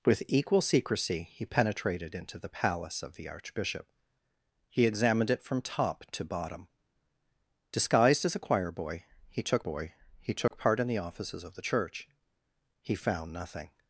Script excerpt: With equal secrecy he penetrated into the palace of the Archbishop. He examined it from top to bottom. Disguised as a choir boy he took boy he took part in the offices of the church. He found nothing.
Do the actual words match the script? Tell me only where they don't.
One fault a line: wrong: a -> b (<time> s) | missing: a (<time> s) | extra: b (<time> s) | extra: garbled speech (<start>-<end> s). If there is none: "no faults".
no faults